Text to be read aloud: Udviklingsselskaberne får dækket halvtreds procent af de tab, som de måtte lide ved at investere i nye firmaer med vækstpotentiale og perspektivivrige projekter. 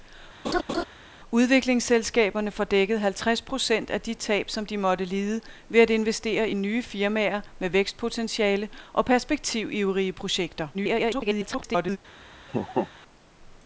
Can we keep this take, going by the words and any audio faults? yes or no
no